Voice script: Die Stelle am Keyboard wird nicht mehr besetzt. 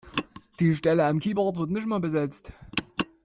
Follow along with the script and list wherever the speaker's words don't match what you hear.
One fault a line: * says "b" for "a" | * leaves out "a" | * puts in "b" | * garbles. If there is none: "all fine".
all fine